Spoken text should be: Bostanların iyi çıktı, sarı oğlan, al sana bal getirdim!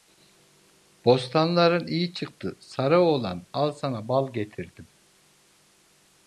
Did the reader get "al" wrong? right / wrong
right